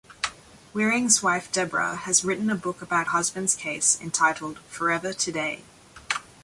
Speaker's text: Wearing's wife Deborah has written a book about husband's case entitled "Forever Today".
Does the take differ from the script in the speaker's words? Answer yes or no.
no